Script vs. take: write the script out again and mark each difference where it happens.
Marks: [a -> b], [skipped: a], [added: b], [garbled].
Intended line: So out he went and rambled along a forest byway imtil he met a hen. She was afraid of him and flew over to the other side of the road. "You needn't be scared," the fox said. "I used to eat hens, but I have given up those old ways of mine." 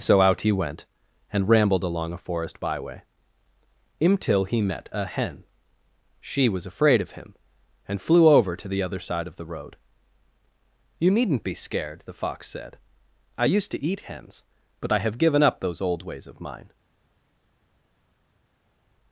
So out he went and rambled along a forest byway imtil he met a hen. She was afraid of him and flew over to the other side of the road. "You needn't be scared," the fox said. "I used to eat hens, but I have given up those old ways of mine."